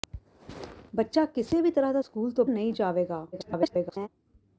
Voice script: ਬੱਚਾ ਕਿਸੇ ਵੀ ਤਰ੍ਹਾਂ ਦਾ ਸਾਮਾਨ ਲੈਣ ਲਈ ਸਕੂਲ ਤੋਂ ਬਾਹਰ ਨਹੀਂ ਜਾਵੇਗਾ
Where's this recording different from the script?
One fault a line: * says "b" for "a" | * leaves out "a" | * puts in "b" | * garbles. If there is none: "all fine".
* leaves out "ਸਾਮਾਨ ਲੈਣ ਲਈ"
* leaves out "ਬਾਹਰ"
* garbles